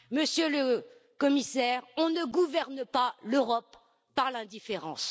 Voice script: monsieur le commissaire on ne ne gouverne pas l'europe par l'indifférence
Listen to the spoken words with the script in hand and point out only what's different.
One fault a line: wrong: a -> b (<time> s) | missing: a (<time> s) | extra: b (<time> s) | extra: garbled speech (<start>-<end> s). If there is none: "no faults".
missing: ne (2.2 s)